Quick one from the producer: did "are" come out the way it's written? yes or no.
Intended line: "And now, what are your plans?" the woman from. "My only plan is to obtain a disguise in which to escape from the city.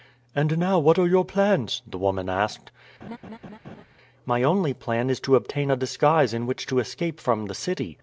yes